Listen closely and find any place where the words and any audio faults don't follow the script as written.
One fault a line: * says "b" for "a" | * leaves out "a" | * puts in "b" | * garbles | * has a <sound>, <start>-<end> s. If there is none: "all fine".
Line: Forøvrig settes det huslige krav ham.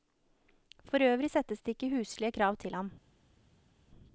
* puts in "ikke"
* puts in "til"